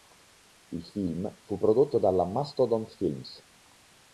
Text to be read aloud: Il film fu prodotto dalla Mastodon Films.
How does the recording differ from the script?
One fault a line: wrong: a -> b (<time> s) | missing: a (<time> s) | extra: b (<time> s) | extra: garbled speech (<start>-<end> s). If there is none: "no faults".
no faults